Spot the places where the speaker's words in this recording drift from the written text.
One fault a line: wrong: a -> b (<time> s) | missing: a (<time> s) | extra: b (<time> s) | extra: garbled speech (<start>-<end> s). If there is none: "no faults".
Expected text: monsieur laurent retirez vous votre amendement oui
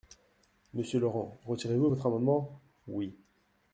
no faults